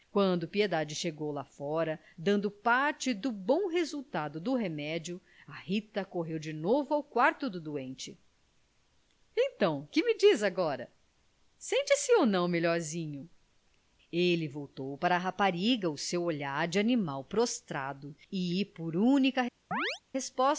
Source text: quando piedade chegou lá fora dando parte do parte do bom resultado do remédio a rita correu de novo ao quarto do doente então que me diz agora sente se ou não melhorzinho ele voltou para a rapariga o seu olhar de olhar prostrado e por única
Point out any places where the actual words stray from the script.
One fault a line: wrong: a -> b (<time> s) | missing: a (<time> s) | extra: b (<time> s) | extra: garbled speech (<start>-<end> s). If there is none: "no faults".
missing: parte do (3.3 s)
wrong: olhar -> animal (16.8 s)